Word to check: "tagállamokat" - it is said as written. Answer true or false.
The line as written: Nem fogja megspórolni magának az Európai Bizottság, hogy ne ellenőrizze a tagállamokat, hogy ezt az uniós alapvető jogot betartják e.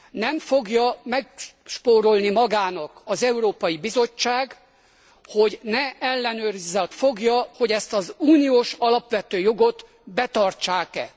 false